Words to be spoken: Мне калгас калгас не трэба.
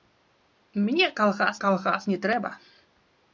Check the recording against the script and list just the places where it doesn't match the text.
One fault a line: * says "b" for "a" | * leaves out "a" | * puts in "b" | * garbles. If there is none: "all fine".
all fine